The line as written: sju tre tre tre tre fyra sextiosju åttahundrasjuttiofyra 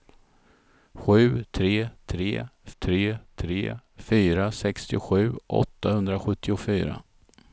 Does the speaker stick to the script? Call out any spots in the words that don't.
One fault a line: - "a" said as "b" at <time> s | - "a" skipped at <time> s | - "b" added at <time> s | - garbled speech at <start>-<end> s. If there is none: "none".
none